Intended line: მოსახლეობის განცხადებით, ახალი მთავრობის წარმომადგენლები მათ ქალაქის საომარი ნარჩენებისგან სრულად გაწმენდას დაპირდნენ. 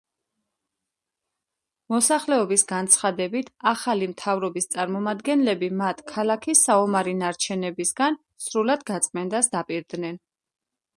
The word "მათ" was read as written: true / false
true